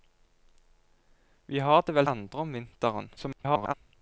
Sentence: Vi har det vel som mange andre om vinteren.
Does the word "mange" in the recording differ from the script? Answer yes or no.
yes